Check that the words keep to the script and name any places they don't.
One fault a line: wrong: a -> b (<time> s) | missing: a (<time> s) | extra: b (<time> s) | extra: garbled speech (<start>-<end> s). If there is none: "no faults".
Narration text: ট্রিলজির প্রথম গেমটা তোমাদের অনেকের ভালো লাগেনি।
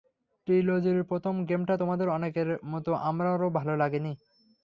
extra: মতো আমারও (2.6 s)